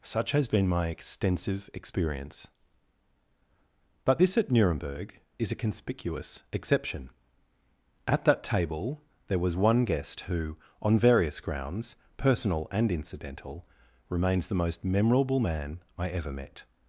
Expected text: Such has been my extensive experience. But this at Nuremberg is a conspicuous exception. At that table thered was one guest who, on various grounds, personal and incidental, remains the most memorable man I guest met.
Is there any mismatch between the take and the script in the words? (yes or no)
yes